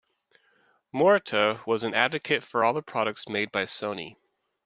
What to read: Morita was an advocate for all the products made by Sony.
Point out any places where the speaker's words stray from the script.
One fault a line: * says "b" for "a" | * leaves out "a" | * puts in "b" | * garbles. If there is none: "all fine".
all fine